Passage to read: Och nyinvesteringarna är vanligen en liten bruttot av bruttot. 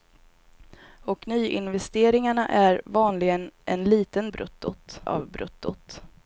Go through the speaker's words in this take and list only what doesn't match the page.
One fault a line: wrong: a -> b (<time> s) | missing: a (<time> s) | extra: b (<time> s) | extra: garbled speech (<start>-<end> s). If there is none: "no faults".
no faults